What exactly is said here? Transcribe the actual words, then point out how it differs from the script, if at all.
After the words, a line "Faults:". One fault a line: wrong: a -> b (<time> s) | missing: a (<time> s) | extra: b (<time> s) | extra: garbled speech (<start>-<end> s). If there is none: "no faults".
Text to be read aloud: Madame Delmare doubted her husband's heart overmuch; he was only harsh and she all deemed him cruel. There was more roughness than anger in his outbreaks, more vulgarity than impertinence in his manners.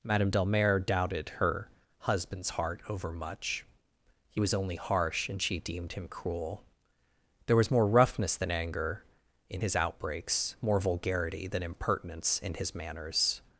Madame Delmare doubted her husband's heart overmuch; he was only harsh and she deemed him cruel. There was more roughness than anger in his outbreaks, more vulgarity than impertinence in his manners.
Faults:
missing: all (5.6 s)